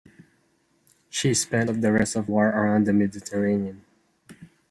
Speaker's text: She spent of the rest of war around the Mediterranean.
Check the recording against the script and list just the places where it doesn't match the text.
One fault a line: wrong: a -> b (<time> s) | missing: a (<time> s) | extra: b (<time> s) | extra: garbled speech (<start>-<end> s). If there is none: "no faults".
no faults